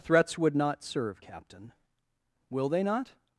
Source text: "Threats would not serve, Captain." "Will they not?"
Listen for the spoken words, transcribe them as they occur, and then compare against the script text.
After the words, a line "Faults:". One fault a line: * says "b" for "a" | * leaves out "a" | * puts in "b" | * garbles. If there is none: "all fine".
"Threats would not serve, Captain." "Will they not?"
Faults:
all fine